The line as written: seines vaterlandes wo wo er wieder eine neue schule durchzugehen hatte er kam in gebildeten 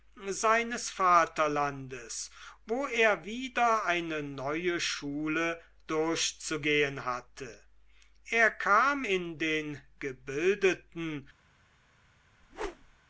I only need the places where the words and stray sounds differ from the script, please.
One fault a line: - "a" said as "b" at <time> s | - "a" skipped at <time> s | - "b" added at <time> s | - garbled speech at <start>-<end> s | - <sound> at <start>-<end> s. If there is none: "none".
- "wo" skipped at 2.9 s
- "den" added at 9.4 s
- whoosh at 12.4-13.0 s